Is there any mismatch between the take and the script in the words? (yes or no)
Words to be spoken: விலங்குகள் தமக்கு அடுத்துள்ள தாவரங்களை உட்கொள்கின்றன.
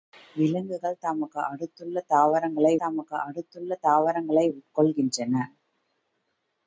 yes